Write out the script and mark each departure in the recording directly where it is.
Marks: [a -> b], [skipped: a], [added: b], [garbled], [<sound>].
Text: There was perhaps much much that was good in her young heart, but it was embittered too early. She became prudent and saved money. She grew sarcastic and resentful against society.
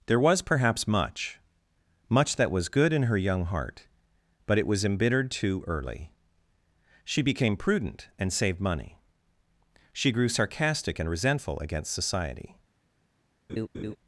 There was perhaps much much that was good in her young heart, but it was embittered too early. She became prudent and saved money. She grew sarcastic and resentful against society. [laugh]